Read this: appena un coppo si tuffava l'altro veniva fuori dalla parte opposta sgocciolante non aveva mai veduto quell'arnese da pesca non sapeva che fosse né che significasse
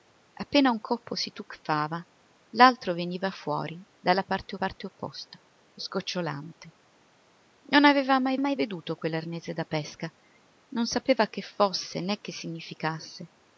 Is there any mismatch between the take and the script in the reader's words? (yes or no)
yes